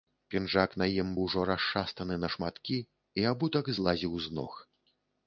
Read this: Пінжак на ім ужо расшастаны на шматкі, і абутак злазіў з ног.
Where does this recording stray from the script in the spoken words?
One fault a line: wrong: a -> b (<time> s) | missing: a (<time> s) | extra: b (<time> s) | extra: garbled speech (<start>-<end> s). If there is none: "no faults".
no faults